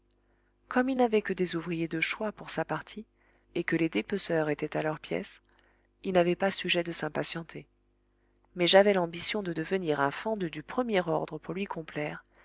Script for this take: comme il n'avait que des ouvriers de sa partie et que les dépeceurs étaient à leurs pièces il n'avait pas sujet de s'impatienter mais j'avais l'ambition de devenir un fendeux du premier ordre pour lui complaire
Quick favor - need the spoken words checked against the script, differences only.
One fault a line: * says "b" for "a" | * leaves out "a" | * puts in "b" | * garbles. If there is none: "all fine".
* puts in "choix pour"